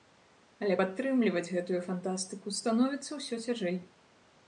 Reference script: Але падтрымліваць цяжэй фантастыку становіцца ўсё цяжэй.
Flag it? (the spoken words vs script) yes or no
yes